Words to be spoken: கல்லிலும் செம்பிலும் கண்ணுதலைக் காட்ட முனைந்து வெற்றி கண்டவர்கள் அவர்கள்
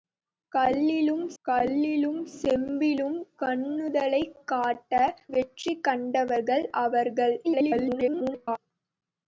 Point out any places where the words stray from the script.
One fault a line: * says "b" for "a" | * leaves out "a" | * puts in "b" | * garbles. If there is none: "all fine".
* puts in "கல்லிலும்"
* leaves out "முனைந்து"
* garbles